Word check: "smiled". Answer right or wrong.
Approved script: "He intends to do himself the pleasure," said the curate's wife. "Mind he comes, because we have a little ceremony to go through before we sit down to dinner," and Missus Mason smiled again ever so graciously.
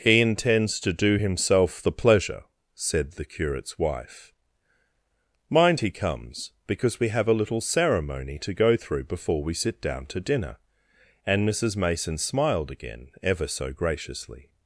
right